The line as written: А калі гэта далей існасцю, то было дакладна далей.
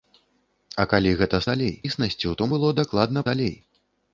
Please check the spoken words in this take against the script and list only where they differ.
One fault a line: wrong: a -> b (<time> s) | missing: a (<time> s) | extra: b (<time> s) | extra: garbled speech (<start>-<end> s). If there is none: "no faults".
no faults